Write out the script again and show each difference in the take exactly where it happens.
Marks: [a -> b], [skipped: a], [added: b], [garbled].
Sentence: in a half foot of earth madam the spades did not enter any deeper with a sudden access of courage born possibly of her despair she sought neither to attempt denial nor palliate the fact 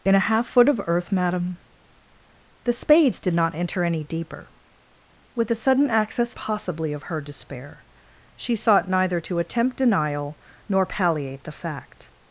in a half foot of earth madam the spades did not enter any deeper with a sudden access [skipped: of courage born] possibly of her despair she sought neither to attempt denial nor palliate the fact